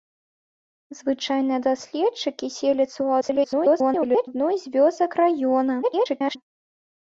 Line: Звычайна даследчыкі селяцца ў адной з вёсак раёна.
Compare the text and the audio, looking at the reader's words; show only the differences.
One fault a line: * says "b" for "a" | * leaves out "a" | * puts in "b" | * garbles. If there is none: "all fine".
* garbles
* garbles